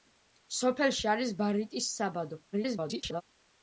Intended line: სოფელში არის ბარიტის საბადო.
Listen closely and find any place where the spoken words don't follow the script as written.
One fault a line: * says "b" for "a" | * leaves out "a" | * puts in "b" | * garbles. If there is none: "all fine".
* garbles